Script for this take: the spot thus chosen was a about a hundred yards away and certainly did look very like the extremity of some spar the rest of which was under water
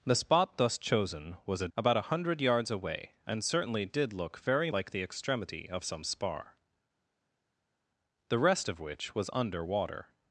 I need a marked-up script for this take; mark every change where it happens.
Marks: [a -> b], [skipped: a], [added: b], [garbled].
the spot thus chosen was a about a hundred yards away and certainly did look very like the extremity of some spar the rest of which was under water